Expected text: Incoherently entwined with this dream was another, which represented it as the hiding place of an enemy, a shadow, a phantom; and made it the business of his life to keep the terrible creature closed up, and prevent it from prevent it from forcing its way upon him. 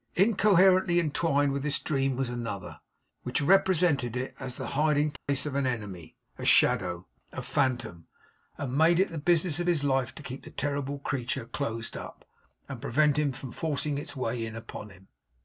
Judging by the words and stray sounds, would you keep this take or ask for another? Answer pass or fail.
fail